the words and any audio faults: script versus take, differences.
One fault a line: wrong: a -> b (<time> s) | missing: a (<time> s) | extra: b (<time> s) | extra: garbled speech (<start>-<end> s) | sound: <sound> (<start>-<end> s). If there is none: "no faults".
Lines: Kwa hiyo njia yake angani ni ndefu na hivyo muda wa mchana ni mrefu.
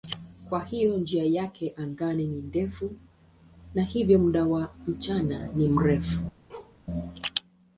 sound: bark (6.5-6.8 s)